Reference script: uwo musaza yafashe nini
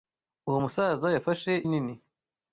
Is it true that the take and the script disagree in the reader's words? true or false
false